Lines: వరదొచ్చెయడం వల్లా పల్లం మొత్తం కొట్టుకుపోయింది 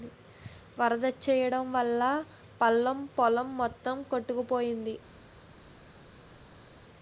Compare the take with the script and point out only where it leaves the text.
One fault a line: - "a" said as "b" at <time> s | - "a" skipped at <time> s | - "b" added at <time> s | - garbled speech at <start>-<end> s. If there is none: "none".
- "పొలం" added at 3.2 s